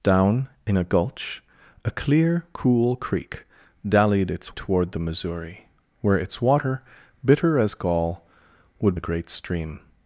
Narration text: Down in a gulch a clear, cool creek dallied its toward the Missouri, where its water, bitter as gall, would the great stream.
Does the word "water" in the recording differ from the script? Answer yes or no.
no